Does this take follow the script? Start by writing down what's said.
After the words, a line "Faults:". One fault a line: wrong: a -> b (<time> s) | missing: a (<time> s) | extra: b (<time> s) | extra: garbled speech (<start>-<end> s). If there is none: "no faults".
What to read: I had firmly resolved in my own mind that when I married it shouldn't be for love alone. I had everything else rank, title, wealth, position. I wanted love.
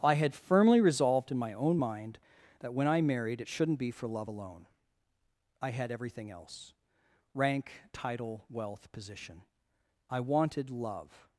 I had firmly resolved in my own mind that when I married it shouldn't be for love alone. I had everything else rank, title, wealth, position. I wanted love.
Faults:
no faults